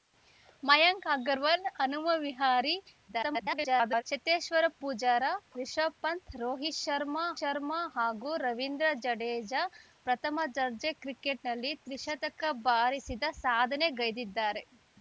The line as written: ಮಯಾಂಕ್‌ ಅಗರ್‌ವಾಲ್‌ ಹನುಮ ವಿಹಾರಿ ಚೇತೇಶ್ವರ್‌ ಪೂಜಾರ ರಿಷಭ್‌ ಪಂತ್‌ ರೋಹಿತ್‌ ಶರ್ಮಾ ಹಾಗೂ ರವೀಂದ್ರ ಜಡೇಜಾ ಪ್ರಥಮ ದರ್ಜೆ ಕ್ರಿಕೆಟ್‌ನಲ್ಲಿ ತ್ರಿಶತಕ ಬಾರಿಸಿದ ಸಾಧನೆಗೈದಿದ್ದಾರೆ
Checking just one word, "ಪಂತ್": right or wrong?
right